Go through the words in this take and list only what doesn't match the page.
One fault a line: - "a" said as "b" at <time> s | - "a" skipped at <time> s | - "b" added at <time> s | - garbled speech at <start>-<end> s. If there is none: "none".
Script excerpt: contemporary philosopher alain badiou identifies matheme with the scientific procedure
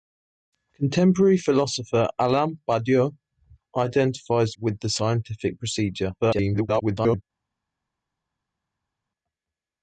- "matheme" skipped at 4.5 s
- garbled speech at 6.2-7.2 s